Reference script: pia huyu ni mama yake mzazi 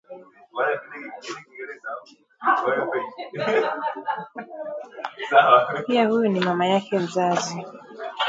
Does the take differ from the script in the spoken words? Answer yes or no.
no